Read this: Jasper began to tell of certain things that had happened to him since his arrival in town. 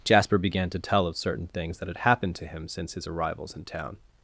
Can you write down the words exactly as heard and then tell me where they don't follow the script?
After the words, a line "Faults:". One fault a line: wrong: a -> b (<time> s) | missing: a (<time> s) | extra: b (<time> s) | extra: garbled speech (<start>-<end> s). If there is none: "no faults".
Jasper began to tell of certain things that had happened to him since his arrivals in town.
Faults:
wrong: arrival -> arrivals (3.1 s)